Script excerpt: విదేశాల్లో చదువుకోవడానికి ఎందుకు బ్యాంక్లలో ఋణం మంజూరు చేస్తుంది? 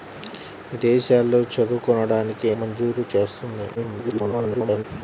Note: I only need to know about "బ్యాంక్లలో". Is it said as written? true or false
false